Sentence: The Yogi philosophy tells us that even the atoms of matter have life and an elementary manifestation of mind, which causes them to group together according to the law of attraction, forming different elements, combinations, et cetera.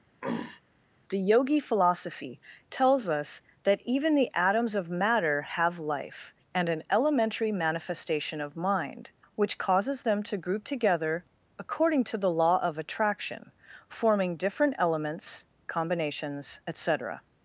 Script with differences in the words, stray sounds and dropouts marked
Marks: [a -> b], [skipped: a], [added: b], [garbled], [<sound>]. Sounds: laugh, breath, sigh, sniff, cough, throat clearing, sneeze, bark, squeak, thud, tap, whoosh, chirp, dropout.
[throat clearing] The Yogi philosophy tells us that even the atoms of matter have life and an elementary manifestation of mind, which causes them to group together according to the law of attraction, forming different elements, combinations, et cetera.